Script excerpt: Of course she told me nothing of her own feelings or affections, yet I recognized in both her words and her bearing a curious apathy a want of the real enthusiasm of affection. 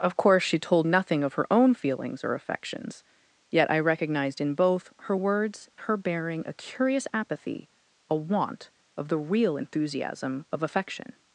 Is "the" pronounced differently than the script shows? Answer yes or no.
no